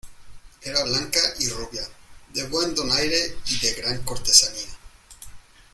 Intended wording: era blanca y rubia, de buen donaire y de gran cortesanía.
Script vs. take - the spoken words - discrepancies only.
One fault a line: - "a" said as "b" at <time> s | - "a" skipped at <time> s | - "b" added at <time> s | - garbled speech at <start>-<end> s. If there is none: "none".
none